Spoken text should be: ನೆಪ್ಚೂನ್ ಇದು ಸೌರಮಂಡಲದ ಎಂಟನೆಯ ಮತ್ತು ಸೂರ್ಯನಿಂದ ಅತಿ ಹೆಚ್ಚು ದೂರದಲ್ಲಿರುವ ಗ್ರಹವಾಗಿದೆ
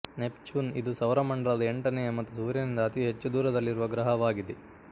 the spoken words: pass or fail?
pass